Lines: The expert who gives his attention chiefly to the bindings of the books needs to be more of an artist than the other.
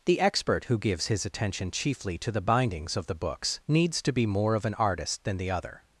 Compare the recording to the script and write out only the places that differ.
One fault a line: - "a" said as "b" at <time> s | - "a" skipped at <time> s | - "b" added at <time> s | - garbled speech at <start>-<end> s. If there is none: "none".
none